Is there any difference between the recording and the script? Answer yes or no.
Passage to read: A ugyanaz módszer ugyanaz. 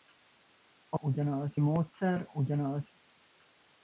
no